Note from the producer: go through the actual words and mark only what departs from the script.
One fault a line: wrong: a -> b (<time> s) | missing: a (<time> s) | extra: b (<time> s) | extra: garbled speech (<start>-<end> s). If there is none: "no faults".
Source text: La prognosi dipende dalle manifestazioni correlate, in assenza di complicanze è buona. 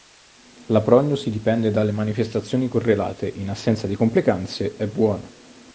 no faults